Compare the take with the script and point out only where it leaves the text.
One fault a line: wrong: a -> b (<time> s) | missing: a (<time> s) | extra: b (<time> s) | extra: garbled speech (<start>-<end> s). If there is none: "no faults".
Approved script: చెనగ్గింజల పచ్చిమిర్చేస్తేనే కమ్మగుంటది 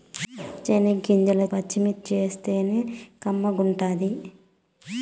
no faults